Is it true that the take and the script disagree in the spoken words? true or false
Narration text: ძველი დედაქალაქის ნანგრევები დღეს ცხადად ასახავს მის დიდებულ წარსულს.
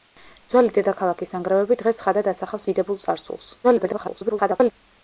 true